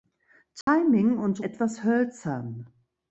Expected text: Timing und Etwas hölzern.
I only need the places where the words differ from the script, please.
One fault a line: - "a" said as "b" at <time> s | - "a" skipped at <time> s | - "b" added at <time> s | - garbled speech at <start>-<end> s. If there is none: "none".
none